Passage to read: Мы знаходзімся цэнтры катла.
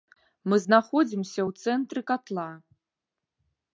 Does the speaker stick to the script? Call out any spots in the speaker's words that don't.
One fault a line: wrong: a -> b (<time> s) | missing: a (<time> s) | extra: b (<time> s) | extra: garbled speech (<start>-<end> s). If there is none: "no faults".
extra: ў (1.5 s)